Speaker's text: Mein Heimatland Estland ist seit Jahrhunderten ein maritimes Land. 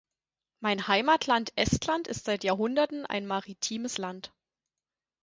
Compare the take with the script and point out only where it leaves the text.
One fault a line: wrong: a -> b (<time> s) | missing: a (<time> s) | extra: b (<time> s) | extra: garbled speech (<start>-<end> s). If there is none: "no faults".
no faults